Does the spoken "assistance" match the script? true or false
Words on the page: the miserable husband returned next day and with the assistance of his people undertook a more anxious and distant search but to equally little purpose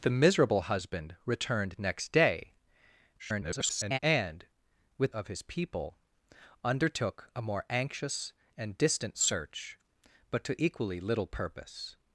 false